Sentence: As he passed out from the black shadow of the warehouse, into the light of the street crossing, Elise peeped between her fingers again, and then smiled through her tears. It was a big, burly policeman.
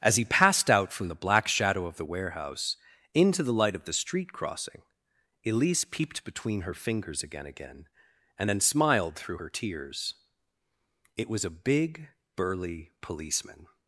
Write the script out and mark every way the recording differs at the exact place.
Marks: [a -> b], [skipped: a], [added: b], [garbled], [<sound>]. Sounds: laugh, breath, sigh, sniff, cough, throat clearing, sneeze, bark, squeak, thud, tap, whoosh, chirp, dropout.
As he passed out from the black shadow of the warehouse, into the light of the street crossing, Elise peeped between her fingers again, [added: again] and then smiled through her tears. It was a big, burly policeman.